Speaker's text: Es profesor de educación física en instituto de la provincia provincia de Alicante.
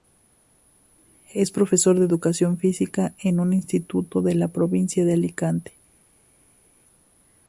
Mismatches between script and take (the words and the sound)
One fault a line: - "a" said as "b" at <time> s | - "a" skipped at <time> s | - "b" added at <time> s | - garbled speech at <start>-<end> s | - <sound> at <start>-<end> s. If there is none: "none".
- "un" added at 3.4 s
- "provincia" skipped at 5.0 s